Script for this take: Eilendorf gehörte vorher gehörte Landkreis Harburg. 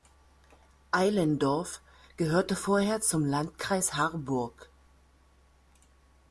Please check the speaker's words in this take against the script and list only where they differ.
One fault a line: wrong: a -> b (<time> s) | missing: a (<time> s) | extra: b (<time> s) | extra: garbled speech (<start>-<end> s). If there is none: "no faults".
wrong: gehörte -> zum (3.0 s)